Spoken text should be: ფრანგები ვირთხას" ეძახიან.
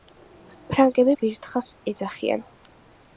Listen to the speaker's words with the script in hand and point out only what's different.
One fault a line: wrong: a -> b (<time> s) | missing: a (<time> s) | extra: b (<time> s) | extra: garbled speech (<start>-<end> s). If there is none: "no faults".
no faults